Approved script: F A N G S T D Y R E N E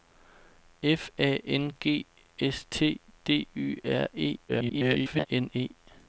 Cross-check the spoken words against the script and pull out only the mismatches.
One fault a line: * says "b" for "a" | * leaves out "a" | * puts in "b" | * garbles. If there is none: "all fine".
* garbles